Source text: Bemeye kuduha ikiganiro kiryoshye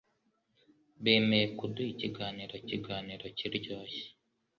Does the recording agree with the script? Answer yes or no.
no